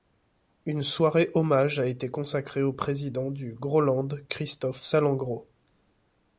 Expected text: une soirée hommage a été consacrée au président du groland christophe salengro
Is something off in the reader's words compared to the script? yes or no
no